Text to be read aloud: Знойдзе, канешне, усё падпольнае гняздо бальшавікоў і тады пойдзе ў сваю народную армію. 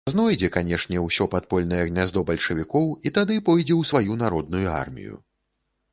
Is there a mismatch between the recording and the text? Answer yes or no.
no